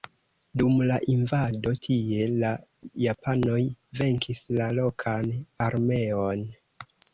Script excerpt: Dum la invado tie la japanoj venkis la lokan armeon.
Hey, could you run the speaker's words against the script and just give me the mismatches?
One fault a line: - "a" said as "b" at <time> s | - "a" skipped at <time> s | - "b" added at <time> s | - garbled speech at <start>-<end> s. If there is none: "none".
none